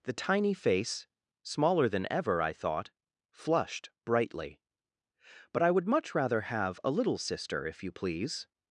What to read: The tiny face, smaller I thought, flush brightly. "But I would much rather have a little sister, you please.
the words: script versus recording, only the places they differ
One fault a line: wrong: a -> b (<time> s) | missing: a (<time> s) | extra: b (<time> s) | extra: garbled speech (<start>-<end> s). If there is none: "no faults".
extra: than ever (1.9 s)
wrong: flush -> flushed (3.3 s)
extra: if (7.7 s)